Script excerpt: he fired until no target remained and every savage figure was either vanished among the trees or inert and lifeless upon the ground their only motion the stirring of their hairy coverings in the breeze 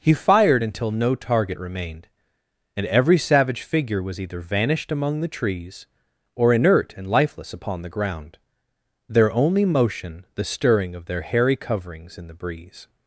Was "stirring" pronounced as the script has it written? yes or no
yes